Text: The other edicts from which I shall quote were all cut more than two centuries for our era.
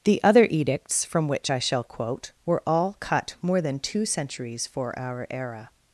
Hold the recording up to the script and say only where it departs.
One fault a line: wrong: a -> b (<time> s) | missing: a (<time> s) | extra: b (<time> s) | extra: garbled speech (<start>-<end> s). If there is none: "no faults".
no faults